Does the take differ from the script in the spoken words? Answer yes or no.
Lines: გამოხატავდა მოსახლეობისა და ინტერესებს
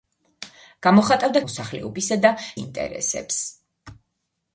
no